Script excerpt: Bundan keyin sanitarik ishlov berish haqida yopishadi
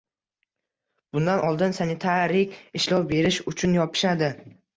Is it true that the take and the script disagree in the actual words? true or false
true